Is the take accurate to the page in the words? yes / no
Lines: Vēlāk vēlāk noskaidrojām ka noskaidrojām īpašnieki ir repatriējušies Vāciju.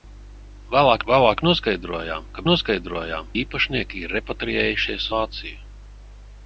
yes